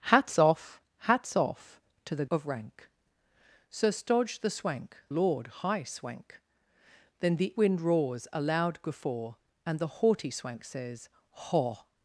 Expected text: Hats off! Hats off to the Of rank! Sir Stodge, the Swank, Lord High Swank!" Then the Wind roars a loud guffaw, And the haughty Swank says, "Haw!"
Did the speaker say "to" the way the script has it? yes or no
yes